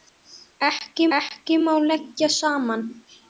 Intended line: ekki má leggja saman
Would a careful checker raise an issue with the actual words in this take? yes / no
yes